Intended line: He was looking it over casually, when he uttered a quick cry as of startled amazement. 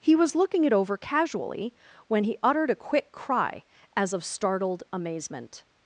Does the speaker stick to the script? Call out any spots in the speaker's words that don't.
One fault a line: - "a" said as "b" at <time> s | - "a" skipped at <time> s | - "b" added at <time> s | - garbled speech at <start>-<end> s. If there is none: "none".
none